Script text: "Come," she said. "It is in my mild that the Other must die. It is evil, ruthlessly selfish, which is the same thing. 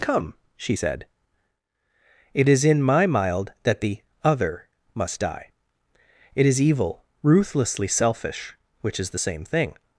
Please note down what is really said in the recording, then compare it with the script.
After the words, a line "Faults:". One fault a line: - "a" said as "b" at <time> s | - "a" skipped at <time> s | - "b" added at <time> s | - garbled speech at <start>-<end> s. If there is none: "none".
"Come," she said. "It is in my mild that the Other must die. It is evil, ruthlessly selfish, which is the same thing.
Faults:
none